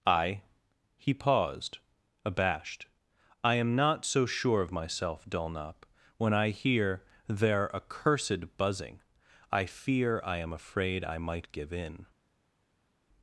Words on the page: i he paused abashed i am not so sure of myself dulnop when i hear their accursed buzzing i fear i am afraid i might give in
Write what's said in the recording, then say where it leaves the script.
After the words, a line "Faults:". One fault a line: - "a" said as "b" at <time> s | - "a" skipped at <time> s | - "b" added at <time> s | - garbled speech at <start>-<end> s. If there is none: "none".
i he paused abashed i am not so sure of myself dulnop when i hear their accursed buzzing i fear i am afraid i might give in
Faults:
none